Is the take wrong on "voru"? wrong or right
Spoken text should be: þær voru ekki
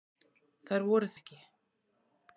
right